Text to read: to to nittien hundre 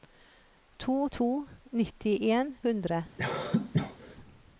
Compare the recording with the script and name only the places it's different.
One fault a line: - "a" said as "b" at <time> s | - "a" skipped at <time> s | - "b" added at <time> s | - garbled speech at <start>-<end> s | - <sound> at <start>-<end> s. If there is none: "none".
- cough at 3.2-4.2 s